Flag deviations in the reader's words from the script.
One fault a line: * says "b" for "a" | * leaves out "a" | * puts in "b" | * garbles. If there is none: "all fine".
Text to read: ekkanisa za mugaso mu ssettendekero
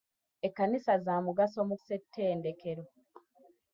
all fine